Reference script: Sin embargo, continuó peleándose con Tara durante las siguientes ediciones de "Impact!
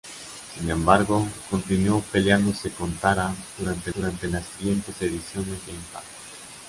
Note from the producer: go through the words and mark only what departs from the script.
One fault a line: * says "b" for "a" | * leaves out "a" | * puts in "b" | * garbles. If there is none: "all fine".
* puts in "durante"